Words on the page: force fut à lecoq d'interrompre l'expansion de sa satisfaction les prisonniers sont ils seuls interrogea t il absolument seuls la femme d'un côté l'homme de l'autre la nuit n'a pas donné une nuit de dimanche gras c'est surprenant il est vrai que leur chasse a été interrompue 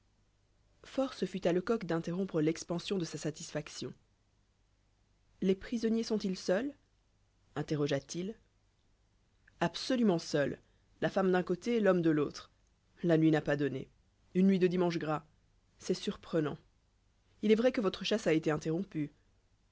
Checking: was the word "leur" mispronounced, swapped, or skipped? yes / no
yes